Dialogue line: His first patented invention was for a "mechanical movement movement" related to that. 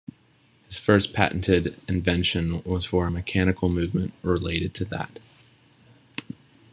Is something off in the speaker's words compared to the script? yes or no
yes